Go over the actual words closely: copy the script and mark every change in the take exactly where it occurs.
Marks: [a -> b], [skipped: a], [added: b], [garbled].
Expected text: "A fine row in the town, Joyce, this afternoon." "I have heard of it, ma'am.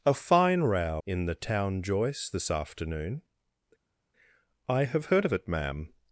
"A fine row in the town, Joyce, this afternoon." "I have heard of it, ma'am.